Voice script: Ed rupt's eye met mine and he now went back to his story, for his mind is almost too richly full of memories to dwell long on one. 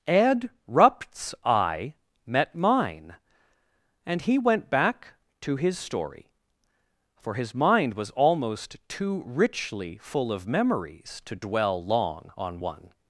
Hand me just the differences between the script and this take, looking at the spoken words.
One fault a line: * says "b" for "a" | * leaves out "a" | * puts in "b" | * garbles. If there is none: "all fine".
* leaves out "now"
* says "was" for "is"